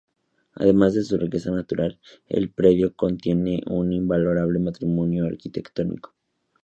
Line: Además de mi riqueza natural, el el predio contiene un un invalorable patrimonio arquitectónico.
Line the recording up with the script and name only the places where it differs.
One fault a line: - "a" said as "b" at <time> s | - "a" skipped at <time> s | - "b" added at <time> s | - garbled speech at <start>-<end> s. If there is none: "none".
- "mi" said as "su" at 1.0 s
- "el" skipped at 2.5 s
- "un" skipped at 3.9 s